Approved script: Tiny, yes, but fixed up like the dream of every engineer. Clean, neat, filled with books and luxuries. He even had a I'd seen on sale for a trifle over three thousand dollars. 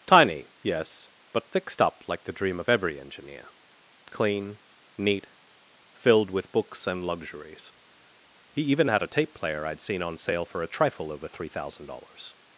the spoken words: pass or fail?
fail